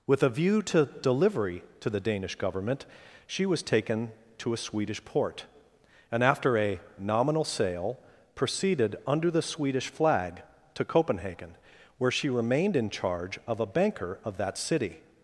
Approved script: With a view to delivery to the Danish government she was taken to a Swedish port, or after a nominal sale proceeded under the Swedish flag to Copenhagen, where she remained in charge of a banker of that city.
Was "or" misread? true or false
true